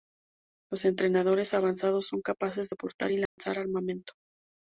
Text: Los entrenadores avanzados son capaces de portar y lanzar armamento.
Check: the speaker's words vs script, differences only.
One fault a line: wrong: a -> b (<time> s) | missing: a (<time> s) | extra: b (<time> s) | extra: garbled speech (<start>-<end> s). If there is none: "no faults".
no faults